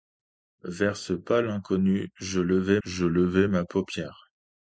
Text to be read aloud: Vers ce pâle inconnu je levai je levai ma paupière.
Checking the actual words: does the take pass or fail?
pass